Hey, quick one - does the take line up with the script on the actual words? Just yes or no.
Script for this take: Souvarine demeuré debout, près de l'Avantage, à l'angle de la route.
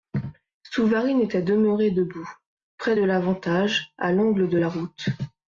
no